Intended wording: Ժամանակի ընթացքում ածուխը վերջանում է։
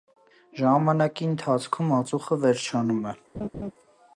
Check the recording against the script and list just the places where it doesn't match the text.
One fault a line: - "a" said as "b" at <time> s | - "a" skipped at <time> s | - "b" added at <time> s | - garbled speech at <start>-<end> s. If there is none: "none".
none